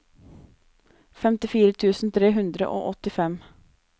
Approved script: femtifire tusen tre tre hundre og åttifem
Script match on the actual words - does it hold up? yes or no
no